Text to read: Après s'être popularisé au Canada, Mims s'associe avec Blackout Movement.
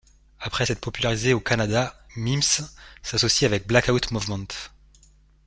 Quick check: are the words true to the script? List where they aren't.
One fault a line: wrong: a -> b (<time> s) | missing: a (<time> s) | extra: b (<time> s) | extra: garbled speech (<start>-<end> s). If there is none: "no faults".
no faults